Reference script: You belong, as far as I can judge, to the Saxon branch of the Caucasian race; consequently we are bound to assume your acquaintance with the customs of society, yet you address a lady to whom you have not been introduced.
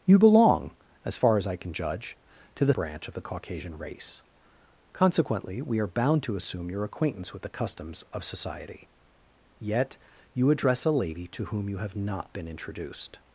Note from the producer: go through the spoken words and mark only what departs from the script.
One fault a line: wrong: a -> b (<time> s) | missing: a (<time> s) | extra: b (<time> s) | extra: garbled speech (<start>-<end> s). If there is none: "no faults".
missing: Saxon (2.7 s)